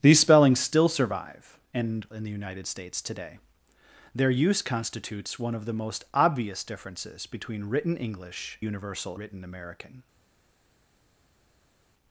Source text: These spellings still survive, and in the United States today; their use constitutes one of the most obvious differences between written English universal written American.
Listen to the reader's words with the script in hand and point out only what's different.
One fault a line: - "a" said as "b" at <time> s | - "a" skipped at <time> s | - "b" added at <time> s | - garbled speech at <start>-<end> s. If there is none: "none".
none